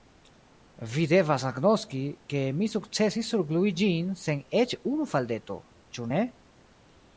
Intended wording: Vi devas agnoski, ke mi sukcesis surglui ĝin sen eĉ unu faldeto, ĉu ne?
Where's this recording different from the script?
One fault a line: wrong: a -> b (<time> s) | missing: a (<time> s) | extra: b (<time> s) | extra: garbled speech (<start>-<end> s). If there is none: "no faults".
no faults